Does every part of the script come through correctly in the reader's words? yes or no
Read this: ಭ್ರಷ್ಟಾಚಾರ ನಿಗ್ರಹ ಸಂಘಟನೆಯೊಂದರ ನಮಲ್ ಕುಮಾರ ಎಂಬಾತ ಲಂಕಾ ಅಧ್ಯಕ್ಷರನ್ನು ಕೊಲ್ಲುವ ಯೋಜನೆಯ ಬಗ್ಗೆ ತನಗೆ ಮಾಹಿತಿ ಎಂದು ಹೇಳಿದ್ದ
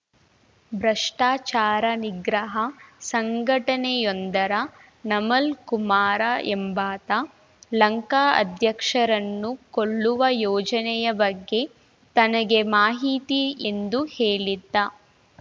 yes